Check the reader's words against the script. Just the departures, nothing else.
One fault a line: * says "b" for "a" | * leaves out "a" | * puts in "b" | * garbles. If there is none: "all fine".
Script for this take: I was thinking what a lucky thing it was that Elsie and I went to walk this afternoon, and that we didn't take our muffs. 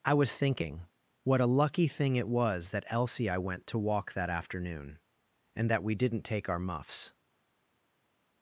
* leaves out "and"
* says "that" for "this"